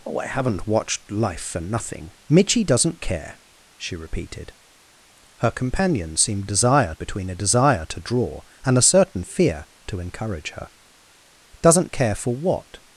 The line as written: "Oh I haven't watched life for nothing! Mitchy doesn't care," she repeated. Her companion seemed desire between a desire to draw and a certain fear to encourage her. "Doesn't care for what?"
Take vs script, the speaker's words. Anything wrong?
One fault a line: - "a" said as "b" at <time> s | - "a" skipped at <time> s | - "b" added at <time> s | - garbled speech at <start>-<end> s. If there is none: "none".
none